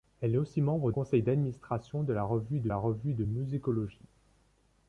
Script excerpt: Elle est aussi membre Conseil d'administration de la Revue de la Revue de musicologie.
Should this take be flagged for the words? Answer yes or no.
no